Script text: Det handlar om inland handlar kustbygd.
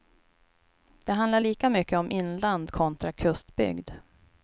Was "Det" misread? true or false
false